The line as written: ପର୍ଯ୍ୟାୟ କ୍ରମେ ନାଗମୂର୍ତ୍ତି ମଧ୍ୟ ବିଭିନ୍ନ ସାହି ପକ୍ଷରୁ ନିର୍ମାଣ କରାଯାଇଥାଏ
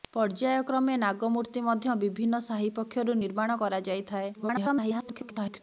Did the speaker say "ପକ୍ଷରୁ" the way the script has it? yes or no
yes